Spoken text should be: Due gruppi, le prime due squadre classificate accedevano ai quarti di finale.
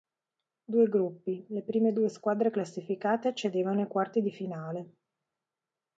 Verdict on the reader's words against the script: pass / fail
pass